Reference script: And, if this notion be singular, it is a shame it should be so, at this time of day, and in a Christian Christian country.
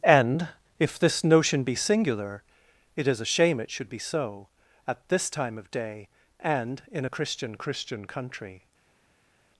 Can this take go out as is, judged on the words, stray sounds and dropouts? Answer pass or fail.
pass